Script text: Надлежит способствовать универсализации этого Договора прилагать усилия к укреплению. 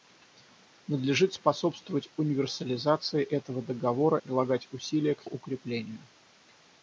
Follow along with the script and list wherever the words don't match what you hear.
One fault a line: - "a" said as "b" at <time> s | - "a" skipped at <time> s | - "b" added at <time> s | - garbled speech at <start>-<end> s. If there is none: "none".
none